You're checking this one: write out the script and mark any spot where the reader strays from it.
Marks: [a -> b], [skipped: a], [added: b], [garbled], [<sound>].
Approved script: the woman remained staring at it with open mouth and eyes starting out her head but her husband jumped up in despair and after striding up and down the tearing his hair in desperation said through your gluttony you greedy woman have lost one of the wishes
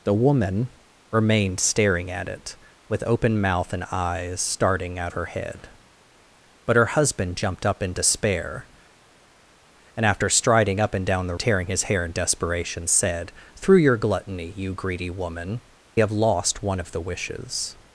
the woman remained staring at it with open mouth and eyes starting out her head but her husband jumped up in despair and after striding up and down the tearing his hair in desperation said through your gluttony you greedy woman have lost one of the wishes